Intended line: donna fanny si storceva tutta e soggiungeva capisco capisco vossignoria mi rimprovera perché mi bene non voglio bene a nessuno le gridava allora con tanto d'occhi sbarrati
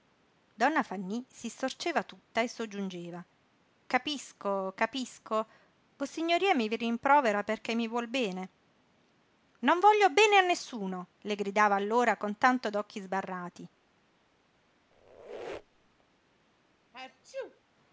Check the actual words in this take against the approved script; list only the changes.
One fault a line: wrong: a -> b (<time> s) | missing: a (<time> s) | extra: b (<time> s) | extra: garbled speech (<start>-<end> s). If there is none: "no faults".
extra: vuol (7.9 s)